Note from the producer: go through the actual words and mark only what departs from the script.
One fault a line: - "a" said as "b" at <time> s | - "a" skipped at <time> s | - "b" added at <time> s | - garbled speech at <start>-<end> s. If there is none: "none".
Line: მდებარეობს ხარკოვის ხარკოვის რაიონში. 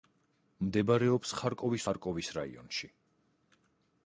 none